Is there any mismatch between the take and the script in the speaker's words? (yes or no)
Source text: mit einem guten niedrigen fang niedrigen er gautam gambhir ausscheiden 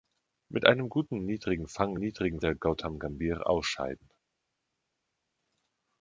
no